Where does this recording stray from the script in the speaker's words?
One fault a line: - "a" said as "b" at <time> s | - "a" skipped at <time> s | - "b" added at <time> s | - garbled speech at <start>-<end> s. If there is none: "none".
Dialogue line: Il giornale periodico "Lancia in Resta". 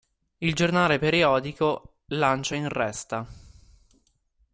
none